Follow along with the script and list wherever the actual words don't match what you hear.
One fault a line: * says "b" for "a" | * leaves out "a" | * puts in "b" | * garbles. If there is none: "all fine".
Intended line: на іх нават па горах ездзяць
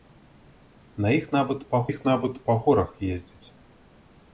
* puts in "іх нават па"